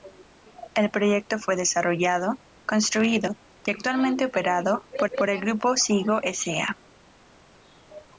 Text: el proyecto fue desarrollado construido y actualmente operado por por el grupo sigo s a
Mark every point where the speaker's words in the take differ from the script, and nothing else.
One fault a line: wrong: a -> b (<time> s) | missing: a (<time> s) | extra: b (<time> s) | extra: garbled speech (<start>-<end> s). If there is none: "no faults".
no faults